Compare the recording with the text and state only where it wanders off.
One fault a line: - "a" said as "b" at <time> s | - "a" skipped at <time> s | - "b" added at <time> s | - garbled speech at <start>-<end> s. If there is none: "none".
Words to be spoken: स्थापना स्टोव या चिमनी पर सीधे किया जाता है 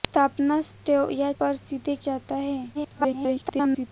- "चिमनी" skipped at 1.3 s
- "किया" skipped at 2.0 s
- garbled speech at 2.7-3.9 s